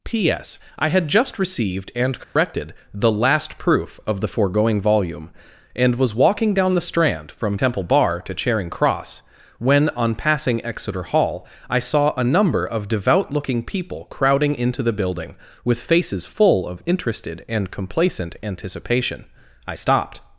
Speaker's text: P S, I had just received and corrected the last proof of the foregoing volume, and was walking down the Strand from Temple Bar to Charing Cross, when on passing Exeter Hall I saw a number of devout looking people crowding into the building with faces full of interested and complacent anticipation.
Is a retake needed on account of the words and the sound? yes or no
yes